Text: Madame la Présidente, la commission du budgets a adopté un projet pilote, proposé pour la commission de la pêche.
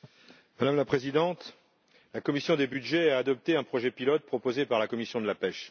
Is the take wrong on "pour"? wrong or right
wrong